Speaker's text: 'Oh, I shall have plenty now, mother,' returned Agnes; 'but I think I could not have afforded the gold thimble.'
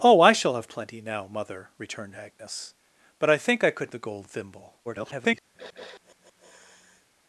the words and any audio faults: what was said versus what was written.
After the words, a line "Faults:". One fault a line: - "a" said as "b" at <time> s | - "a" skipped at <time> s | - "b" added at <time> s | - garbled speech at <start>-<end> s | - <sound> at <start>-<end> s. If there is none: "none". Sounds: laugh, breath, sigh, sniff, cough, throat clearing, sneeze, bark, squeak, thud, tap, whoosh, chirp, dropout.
'Oh, I shall have plenty now, mother,' returned Agnes; 'but I think I could the gold thimble.' [garbled]
Faults:
- "not have afforded" skipped at 3.9 s
- garbled speech at 4.8-5.4 s
- sniff at 5.5-7.1 s